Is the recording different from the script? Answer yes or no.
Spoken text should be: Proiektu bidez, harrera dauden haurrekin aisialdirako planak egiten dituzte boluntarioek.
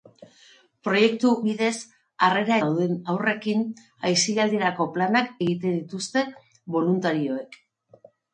no